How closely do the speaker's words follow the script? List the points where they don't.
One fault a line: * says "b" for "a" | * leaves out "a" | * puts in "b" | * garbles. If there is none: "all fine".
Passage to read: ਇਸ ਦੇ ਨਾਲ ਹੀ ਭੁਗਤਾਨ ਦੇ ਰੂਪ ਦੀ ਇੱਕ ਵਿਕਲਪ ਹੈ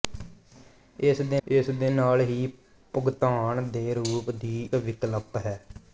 * puts in "ਇਸ ਦੇ"
* leaves out "ਇੱਕ"